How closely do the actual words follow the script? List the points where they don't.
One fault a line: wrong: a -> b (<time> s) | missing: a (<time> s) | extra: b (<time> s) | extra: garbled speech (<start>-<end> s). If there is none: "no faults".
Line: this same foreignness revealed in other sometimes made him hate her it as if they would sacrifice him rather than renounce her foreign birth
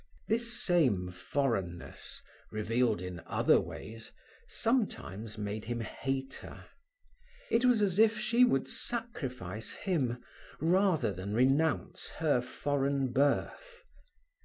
extra: ways (3.6 s)
extra: was (7.7 s)
wrong: they -> she (8.2 s)